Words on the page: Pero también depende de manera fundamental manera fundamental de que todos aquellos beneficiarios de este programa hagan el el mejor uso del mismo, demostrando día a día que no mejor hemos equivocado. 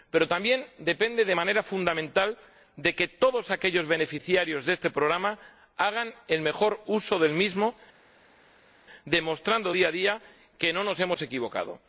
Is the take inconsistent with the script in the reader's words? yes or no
yes